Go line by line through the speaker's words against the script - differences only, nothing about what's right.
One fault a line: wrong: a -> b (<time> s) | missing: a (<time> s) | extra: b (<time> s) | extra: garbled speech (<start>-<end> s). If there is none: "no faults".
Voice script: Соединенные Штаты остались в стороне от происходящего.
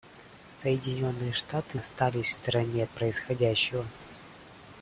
no faults